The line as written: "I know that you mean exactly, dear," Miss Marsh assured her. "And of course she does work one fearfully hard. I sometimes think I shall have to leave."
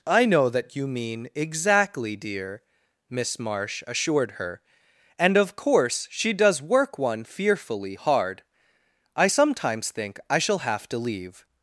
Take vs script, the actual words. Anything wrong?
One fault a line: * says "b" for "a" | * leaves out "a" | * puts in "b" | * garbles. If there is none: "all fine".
all fine